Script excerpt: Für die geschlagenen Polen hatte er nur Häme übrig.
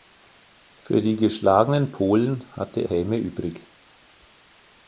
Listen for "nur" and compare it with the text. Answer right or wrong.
wrong